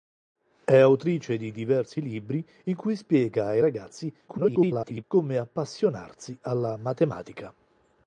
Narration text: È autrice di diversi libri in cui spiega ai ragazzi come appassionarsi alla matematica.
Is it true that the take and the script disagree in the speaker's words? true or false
true